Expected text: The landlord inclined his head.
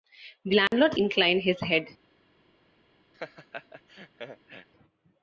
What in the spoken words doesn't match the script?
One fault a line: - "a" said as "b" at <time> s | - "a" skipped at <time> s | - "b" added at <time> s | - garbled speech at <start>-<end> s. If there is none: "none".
none